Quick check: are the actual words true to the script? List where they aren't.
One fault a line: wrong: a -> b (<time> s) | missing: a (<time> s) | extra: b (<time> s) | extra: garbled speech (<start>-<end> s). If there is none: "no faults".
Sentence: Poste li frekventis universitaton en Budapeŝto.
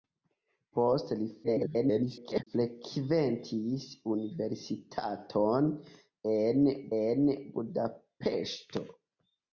extra: garbled speech (1.4-2.5 s)
extra: en (7.0 s)